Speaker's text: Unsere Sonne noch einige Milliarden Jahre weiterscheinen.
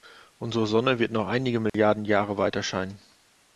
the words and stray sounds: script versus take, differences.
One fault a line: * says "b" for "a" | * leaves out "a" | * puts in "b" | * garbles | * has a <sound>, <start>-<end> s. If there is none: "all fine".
* puts in "wird"
* has a dropout, 1.7-1.7 s